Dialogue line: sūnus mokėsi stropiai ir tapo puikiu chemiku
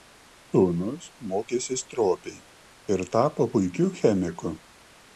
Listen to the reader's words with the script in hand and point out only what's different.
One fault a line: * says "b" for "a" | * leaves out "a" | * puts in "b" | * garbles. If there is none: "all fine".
all fine